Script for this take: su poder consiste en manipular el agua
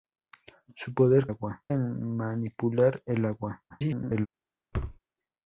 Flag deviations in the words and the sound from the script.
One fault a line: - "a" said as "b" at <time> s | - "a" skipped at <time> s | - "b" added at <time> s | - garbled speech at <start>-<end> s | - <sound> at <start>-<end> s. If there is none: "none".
- "consiste" said as "agua" at 1.3 s
- garbled speech at 3.7-4.3 s
- thud at 4.7-5.0 s